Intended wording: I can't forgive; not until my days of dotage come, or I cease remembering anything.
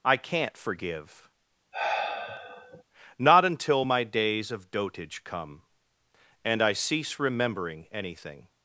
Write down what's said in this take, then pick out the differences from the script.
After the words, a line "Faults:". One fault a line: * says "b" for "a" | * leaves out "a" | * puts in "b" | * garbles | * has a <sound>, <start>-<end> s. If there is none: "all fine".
I can't forgive; not until my days of dotage come, and I cease remembering anything.
Faults:
* has a sigh, 1.7-2.8 s
* says "and" for "or"